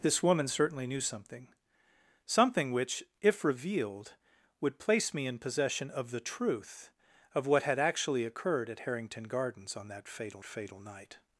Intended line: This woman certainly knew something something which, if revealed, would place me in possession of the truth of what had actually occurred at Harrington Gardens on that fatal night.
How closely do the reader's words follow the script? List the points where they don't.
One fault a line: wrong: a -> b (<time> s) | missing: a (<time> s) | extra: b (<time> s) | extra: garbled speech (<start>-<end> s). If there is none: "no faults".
extra: fatal (10.4 s)